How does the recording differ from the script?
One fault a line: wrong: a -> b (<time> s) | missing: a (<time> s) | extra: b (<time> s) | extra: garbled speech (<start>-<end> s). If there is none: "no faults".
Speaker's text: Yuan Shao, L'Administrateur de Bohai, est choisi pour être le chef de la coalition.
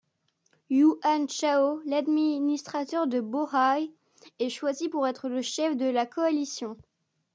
no faults